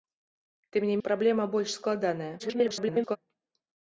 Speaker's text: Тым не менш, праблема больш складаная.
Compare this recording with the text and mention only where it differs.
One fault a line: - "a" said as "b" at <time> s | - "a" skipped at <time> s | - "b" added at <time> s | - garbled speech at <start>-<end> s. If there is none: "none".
- "менш" skipped at 0.9 s
- garbled speech at 2.4-3.2 s